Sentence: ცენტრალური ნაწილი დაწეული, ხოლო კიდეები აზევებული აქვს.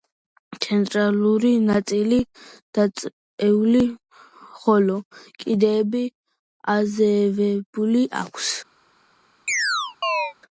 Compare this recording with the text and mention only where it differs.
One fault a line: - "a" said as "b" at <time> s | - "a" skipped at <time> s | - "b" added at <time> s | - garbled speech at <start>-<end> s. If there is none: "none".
none